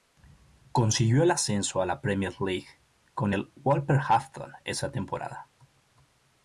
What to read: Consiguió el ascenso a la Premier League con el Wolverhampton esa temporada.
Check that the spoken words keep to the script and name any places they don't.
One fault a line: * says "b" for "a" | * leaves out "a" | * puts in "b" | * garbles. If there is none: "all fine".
all fine